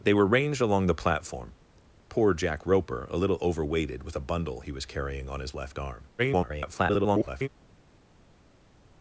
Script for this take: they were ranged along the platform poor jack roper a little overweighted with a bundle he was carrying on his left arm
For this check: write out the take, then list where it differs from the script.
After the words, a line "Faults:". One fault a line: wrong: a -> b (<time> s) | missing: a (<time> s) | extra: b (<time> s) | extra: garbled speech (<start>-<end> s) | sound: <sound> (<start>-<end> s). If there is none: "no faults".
they were ranged along the platform poor jack roper a little overweighted with a bundle he was carrying on his left arm [garbled]
Faults:
extra: garbled speech (6.2-7.5 s)